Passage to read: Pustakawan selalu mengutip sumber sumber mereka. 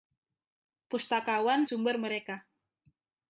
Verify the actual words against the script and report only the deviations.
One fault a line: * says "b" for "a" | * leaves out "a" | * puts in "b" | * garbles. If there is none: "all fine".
* leaves out "selalu mengutip sumber"